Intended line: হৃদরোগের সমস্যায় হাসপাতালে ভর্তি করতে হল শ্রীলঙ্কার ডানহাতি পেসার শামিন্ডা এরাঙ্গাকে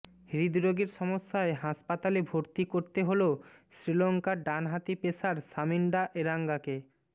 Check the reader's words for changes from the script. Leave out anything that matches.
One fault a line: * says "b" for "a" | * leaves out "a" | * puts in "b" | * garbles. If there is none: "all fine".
all fine